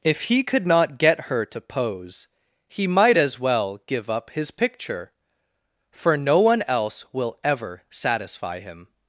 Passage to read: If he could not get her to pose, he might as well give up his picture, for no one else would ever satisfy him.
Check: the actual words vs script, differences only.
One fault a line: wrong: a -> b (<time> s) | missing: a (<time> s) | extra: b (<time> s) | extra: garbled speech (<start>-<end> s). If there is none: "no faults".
wrong: would -> will (7.1 s)